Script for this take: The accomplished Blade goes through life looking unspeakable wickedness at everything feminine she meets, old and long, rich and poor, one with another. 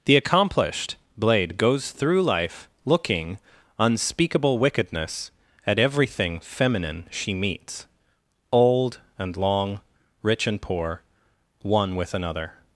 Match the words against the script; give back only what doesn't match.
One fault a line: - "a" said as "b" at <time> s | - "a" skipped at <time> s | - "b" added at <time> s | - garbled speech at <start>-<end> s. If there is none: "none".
none